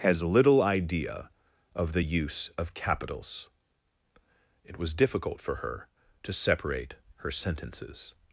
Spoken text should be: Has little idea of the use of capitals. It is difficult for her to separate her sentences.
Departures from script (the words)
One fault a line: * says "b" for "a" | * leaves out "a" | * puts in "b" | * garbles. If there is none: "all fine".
* says "was" for "is"